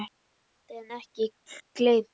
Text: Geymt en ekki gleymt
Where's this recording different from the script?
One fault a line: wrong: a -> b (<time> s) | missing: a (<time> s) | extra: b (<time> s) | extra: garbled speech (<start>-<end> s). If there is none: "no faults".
no faults